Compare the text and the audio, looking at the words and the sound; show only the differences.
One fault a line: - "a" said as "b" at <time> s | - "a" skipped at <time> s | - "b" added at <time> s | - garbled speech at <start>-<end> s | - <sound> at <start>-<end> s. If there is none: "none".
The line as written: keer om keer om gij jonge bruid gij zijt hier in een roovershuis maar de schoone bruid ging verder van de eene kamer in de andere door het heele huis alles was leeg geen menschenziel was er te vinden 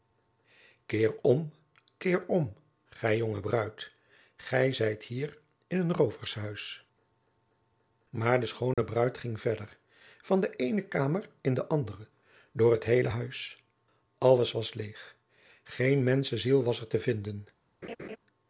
- dropout at 8.7-8.8 s
- laugh at 17.8-18.2 s